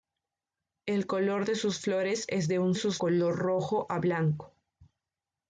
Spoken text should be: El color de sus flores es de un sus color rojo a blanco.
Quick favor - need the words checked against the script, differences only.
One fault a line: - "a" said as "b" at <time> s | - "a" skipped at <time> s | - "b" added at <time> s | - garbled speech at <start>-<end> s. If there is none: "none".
none